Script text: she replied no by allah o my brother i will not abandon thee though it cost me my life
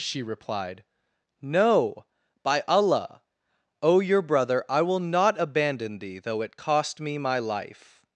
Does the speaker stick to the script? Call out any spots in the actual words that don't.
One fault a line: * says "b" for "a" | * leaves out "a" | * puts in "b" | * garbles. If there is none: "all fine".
* says "your" for "my"